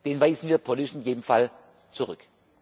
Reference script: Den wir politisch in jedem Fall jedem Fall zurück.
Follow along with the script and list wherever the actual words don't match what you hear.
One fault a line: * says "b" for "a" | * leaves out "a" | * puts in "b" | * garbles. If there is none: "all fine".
* puts in "weisen"
* leaves out "jedem Fall"